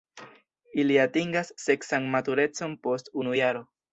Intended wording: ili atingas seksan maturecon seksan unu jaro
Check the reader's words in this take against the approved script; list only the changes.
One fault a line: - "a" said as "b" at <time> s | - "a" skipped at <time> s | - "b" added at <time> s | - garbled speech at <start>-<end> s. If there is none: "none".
- "seksan" said as "post" at 2.9 s